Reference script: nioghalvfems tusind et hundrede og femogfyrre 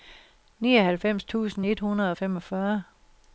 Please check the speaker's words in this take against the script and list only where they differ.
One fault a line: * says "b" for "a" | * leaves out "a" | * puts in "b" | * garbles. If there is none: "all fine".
all fine